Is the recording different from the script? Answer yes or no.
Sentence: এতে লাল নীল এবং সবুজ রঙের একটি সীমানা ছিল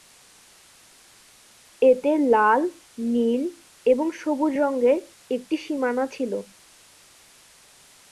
no